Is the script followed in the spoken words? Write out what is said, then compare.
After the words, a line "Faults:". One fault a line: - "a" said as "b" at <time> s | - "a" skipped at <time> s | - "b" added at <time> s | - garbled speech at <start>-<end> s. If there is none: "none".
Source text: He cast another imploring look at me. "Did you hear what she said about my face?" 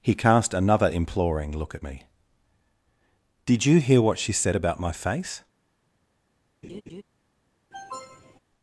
He cast another imploring look at me. "Did you hear what she said about my face?"
Faults:
none